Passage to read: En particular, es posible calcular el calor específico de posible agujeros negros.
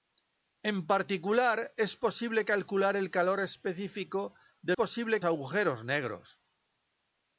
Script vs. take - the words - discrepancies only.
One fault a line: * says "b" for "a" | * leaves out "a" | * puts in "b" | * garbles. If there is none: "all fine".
all fine